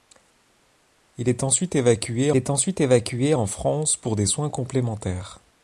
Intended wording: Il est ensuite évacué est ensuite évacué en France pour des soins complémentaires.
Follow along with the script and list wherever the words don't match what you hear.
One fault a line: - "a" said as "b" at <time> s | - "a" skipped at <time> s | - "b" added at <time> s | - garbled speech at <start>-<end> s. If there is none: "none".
none